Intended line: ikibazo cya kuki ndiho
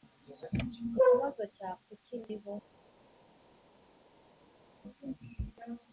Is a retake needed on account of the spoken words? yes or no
no